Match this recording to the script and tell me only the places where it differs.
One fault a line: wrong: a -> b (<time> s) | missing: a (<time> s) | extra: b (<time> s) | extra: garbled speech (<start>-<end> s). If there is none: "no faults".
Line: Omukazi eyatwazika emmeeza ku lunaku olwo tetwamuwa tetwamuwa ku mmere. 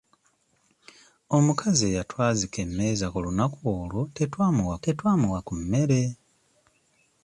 no faults